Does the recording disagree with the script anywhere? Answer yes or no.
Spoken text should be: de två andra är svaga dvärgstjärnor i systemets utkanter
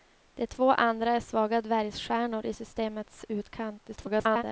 yes